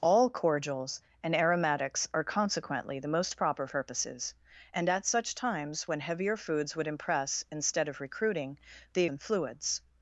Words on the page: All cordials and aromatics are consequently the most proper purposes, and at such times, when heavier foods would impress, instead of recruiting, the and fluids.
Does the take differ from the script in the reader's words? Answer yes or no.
no